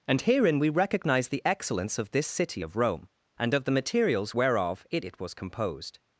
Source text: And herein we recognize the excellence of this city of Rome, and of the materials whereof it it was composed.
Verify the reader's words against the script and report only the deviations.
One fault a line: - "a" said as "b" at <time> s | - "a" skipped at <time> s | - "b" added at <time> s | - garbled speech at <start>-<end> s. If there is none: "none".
none